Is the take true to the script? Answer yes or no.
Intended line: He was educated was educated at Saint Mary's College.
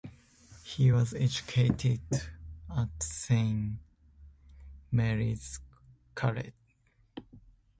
no